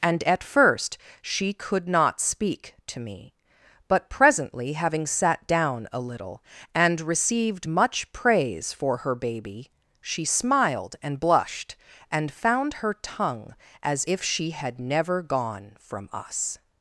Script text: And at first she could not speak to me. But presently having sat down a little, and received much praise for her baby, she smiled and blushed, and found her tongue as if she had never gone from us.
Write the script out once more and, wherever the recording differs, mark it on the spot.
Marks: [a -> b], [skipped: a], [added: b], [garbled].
And at first she could not speak to me. But presently having sat down a little, and received much praise for her baby, she smiled and blushed, and found her tongue as if she had never gone from us.